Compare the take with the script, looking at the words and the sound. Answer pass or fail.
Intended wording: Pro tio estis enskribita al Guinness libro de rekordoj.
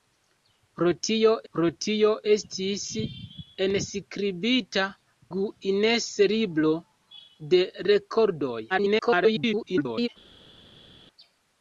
fail